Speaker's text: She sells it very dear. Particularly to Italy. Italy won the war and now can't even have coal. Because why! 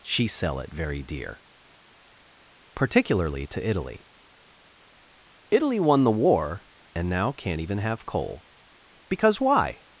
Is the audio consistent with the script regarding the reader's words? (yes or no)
no